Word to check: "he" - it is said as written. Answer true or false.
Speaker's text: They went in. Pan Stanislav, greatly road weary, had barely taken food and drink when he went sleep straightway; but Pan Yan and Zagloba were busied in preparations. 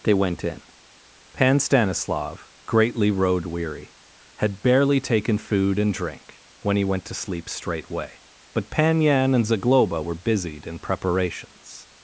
true